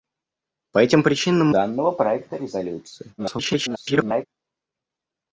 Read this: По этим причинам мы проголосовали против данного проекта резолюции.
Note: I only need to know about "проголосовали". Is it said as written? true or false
false